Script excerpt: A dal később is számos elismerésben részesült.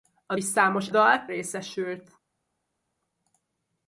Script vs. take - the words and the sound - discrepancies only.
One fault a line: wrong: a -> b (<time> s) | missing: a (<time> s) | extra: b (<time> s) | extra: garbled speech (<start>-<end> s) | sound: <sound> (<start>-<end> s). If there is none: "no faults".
missing: dal később (0.3 s)
wrong: elismerésben -> dal (0.9 s)